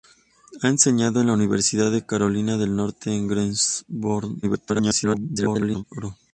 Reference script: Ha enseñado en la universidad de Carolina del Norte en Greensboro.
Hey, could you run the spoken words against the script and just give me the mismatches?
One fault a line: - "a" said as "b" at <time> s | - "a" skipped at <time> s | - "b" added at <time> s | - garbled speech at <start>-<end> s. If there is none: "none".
- garbled speech at 4.4-5.8 s